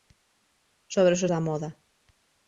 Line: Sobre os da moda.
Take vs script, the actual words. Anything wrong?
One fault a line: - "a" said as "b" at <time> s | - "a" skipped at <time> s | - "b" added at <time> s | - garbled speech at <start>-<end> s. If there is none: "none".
none